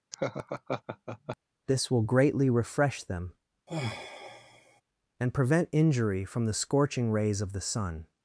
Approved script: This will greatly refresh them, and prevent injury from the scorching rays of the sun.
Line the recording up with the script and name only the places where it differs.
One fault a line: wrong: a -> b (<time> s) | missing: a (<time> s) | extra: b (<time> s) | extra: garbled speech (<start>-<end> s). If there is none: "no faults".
no faults